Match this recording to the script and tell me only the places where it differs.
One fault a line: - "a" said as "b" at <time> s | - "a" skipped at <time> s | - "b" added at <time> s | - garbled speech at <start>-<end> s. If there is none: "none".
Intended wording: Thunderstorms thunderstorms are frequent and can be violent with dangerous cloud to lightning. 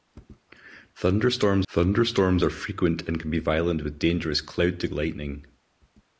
none